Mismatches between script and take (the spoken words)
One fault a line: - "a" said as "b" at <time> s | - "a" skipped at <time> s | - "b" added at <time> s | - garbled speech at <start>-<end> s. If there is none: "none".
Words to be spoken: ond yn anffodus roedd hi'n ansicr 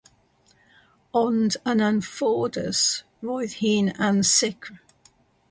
none